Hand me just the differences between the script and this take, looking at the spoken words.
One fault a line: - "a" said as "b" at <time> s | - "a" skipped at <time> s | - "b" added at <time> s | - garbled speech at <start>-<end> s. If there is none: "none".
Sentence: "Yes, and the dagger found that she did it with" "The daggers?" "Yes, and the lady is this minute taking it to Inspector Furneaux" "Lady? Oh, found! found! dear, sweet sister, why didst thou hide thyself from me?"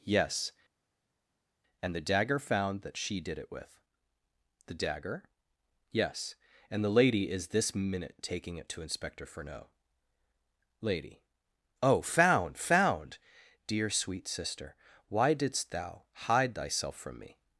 - "daggers" said as "dagger" at 4.7 s